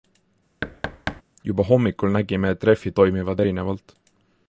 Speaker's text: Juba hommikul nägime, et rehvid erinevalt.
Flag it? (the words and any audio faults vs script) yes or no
yes